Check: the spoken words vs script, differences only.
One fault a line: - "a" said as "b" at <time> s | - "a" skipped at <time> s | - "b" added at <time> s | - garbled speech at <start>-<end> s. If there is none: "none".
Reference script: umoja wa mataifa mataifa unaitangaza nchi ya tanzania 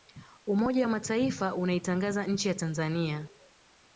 - "mataifa" skipped at 1.6 s